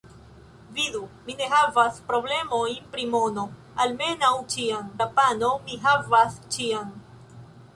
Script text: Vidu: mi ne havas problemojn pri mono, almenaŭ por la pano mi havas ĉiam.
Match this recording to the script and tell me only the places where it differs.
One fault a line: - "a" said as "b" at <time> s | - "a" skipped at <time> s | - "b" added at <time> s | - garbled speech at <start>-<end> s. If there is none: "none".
- "por" said as "ĉiam" at 4.6 s